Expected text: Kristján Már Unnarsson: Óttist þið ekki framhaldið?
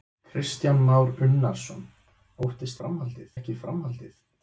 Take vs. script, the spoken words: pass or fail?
fail